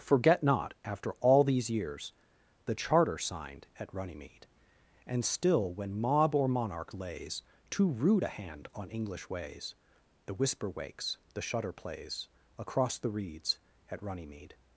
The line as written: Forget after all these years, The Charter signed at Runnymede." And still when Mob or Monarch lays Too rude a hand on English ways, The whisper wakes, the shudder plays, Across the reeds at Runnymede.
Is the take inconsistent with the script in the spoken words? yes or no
yes